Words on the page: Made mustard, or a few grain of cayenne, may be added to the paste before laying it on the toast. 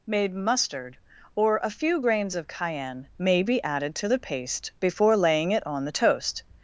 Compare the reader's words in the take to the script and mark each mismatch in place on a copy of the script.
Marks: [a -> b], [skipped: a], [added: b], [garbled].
Made mustard, or a few [grain -> grains] of cayenne, may be added to the paste before laying it on the toast.